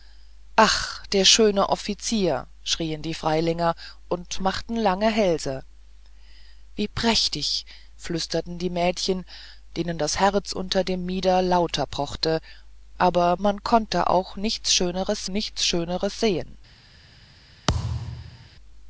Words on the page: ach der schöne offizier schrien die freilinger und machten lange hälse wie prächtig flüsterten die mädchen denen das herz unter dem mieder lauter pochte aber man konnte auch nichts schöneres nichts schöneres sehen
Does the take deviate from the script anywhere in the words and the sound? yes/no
yes